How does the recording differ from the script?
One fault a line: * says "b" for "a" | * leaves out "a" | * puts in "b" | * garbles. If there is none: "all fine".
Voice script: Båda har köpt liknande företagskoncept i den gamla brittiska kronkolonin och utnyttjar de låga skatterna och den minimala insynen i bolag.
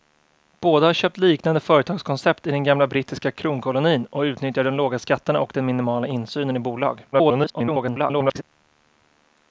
* garbles